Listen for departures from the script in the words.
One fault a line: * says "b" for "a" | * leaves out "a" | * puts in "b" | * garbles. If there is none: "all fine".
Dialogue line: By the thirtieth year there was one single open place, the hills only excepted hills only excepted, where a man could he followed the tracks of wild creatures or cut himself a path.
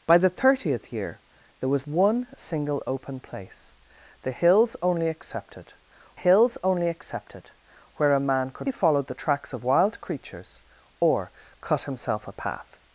all fine